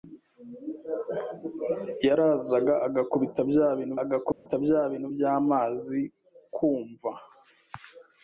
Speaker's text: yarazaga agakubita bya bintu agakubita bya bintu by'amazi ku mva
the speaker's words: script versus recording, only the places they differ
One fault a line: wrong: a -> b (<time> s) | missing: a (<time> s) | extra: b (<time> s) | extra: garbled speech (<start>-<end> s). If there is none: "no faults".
no faults